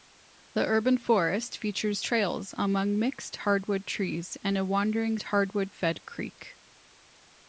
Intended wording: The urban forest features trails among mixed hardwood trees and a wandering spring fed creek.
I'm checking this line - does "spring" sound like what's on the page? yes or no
no